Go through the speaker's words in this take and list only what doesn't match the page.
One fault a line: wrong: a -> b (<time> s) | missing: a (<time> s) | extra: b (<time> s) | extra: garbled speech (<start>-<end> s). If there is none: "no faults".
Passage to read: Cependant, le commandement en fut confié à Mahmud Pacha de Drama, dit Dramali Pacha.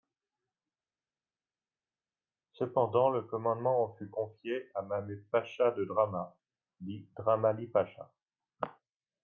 no faults